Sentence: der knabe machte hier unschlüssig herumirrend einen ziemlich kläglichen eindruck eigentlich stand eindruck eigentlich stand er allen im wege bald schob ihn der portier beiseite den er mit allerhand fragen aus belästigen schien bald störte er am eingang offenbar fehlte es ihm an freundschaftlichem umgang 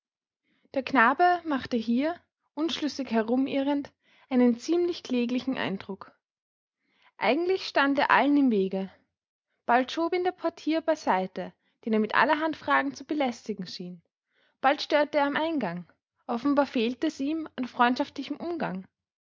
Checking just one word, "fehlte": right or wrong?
right